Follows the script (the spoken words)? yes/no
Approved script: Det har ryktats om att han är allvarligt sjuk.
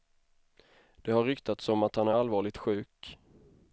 yes